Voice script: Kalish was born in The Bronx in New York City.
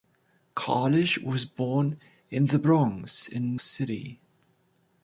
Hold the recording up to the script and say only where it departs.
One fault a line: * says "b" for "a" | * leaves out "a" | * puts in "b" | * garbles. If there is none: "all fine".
* leaves out "New York"